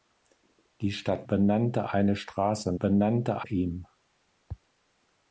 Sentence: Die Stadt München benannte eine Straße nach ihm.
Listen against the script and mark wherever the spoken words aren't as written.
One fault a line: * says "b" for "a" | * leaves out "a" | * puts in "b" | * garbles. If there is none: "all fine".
* leaves out "München"
* says "benannte" for "nach"